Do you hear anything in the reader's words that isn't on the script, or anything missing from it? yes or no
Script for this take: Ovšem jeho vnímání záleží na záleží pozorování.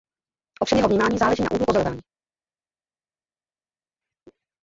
yes